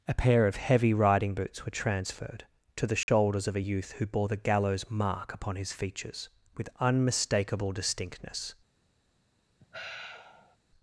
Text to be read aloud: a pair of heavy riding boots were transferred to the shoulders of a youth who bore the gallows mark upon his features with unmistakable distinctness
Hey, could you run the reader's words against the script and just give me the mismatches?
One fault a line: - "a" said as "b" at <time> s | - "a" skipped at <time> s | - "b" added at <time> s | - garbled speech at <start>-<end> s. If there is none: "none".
none